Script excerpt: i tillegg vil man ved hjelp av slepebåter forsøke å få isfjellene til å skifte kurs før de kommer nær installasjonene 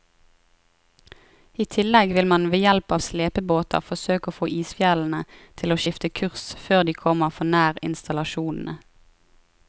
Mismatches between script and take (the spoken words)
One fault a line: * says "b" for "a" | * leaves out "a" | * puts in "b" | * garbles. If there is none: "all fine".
* puts in "for"